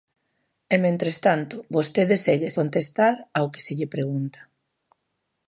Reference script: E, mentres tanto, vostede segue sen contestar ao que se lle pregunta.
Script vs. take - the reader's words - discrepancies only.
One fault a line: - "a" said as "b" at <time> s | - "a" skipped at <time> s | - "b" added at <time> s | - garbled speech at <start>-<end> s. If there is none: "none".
- "sen" skipped at 2.5 s